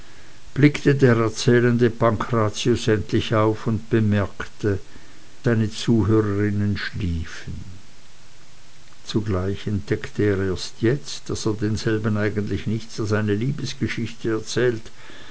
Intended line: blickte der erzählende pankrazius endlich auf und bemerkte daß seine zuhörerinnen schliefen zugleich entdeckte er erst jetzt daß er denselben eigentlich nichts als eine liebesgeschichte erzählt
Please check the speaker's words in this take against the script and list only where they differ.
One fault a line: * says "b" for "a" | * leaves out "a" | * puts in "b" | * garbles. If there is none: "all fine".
* leaves out "daß"